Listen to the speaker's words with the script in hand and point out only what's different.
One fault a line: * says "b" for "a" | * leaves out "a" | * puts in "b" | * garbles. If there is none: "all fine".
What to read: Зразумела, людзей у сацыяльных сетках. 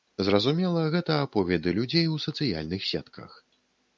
* puts in "гэта аповеды"